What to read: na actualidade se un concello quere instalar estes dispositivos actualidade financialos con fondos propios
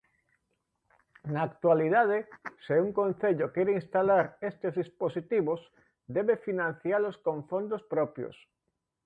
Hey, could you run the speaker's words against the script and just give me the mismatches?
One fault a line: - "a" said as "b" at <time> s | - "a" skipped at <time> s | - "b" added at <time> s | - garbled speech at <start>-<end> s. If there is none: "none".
- "actualidade" said as "debe" at 6.2 s